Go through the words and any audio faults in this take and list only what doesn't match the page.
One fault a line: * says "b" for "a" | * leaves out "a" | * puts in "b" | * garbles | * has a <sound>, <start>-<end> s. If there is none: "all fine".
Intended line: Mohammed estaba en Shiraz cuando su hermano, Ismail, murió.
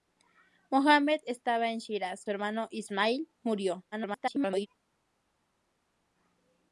* leaves out "cuando"
* garbles